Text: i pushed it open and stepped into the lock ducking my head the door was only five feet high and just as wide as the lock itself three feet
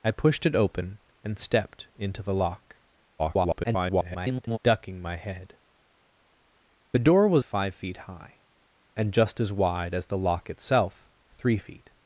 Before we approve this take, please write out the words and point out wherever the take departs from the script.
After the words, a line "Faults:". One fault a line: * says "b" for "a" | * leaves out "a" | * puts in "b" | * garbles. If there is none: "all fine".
i pushed it open and stepped into the lock [garbled] ducking my head the door was five feet high and just as wide as the lock itself three feet
Faults:
* garbles
* leaves out "only"